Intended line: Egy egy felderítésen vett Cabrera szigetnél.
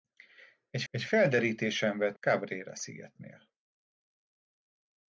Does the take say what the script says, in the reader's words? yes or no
yes